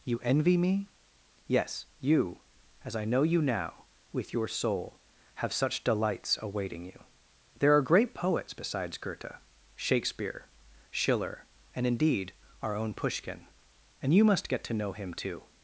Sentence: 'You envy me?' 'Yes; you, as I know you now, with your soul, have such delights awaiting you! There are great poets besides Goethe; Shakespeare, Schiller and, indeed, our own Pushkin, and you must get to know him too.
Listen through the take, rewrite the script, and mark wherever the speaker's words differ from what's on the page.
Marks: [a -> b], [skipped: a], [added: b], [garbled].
'You envy me?' 'Yes; you, as I know you now, with your soul, have such delights awaiting you! There are great poets besides Goethe; Shakespeare, Schiller and, indeed, our own Pushkin, and you must get to know him too.